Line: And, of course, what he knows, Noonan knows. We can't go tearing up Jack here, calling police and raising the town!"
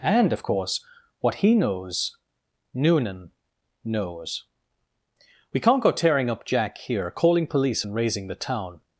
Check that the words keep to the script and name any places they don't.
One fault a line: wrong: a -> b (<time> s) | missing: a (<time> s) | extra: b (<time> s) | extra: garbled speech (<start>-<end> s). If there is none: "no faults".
no faults